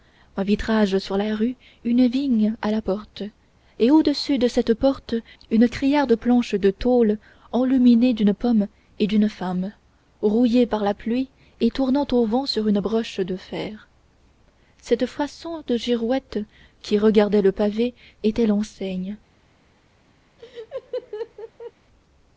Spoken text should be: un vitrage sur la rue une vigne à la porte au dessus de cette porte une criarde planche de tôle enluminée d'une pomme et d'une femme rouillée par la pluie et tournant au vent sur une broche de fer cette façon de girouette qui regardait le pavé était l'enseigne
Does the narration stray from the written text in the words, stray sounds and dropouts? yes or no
yes